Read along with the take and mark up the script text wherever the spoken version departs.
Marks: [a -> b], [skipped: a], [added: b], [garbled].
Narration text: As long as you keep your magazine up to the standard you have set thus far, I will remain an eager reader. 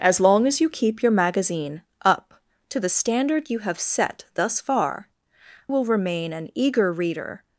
As long as you keep your magazine up to the standard you have set thus far, [skipped: I] will remain an eager reader.